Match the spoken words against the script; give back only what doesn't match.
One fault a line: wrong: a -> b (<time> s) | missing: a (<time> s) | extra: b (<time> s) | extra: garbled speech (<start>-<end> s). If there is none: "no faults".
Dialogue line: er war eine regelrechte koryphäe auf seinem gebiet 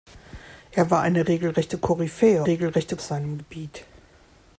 wrong: auf -> regelrechte (2.5 s)